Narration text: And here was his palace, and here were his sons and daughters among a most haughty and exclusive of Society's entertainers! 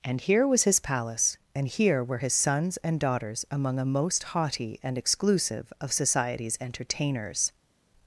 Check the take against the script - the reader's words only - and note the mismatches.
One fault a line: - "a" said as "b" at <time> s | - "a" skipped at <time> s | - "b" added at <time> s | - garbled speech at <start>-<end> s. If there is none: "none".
none